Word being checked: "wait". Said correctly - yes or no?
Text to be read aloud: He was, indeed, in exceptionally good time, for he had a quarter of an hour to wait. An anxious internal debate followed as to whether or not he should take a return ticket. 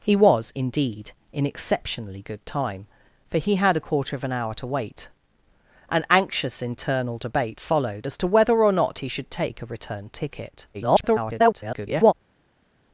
yes